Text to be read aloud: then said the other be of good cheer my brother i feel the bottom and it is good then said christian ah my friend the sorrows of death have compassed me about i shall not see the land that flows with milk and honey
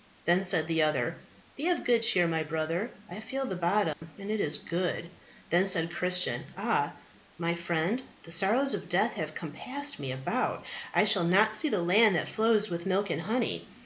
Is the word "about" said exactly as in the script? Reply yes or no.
yes